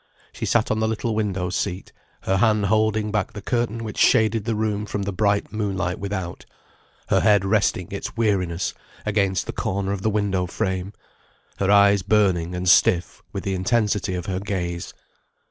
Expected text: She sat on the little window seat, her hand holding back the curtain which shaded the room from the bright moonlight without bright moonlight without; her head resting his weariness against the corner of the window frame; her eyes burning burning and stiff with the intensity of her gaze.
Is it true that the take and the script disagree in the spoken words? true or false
true